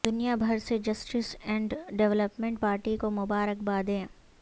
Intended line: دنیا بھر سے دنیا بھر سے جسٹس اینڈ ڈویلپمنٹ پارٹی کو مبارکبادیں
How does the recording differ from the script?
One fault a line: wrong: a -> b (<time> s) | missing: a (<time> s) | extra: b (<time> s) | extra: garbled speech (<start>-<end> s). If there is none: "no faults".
missing: دنیا بھر سے (0.8 s)